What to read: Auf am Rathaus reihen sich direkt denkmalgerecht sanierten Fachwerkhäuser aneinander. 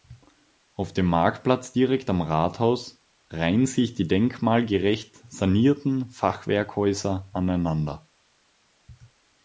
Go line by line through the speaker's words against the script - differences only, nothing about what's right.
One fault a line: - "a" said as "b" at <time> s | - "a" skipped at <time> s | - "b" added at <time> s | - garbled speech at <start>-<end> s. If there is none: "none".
- "dem Marktplatz direkt" added at 0.9 s
- "direkt" said as "die" at 4.0 s